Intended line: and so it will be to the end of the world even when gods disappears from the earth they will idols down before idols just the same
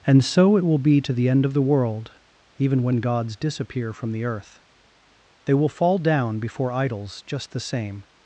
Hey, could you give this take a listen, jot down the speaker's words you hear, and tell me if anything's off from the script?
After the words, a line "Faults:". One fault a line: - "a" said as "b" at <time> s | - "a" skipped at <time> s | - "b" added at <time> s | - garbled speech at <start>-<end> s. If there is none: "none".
and so it will be to the end of the world even when gods disappear from the earth they will fall down before idols just the same
Faults:
- "disappears" said as "disappear" at 3.4 s
- "idols" said as "fall" at 5.7 s